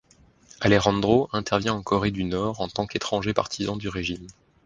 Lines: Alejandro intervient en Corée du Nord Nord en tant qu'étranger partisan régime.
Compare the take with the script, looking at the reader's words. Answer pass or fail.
fail